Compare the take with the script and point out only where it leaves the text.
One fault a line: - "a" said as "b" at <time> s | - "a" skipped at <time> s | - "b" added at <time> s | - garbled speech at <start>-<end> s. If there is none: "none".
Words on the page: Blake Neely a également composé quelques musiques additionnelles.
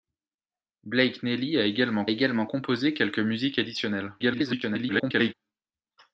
- "également" added at 2.1 s
- garbled speech at 4.2-5.3 s